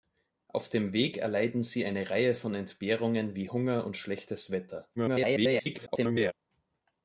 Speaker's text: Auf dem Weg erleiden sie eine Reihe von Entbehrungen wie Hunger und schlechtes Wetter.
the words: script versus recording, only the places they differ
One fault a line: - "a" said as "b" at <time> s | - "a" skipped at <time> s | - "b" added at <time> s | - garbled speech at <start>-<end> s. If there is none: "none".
- garbled speech at 5.0-6.3 s